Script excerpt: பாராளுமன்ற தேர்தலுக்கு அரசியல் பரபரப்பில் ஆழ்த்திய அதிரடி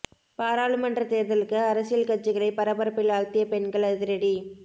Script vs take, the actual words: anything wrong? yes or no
yes